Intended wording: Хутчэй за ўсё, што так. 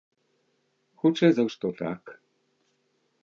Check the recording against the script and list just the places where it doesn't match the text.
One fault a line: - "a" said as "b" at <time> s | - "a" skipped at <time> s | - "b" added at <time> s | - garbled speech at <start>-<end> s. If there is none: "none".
- "ўсё" skipped at 1.4 s